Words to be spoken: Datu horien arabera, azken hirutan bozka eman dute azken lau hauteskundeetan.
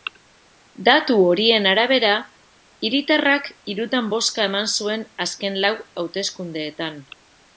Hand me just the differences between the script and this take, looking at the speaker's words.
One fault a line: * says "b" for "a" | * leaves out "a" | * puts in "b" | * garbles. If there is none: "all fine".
* says "hiritarrak" for "azken"
* says "zuen" for "dute"